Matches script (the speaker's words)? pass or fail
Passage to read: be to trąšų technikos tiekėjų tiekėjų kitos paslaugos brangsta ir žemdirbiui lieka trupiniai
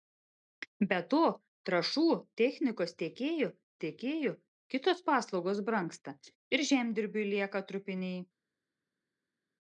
pass